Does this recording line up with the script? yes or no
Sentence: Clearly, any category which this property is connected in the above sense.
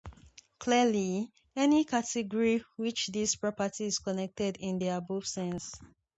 yes